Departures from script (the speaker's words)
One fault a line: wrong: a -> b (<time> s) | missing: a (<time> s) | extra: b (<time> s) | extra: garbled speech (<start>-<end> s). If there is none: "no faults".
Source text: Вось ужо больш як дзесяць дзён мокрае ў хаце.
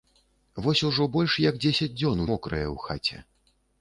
no faults